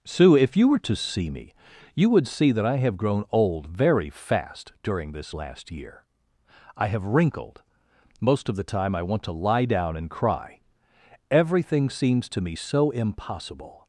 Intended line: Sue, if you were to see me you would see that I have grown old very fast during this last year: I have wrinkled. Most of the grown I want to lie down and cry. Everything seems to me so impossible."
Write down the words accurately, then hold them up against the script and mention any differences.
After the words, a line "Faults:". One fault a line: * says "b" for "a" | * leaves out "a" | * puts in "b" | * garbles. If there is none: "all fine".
Sue, if you were to see me you would see that I have grown old very fast during this last year: I have wrinkled. Most of the time I want to lie down and cry. Everything seems to me so impossible."
Faults:
* says "time" for "grown"